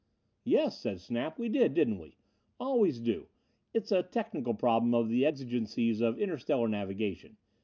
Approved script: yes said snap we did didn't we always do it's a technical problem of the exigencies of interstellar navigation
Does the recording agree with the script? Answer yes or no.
yes